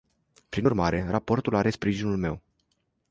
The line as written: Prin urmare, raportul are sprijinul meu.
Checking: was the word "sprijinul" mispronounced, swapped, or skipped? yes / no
no